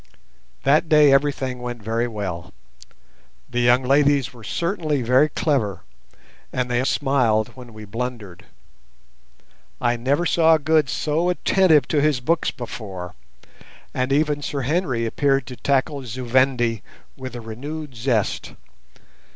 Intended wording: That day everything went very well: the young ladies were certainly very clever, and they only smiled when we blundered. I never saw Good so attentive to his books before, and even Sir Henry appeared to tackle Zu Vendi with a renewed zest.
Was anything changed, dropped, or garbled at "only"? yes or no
yes